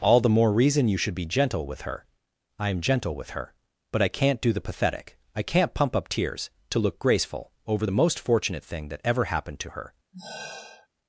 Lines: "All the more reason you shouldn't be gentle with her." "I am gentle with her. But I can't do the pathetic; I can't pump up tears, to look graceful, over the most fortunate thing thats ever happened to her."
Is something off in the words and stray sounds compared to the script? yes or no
yes